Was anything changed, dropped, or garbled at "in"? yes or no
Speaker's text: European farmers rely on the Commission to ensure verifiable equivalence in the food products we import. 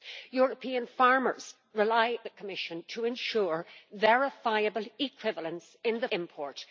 no